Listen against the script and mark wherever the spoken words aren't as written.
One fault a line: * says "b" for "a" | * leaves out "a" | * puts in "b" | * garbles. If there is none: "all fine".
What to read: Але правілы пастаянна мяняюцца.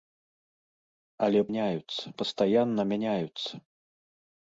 * says "мяняюцца" for "правілы"